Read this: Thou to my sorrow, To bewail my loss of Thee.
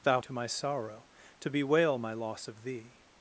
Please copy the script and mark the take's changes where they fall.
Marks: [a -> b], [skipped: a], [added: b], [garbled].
Thou to my sorrow, To bewail my loss of Thee.